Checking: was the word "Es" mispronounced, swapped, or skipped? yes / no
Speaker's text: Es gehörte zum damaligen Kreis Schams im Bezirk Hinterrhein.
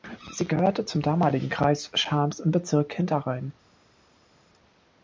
yes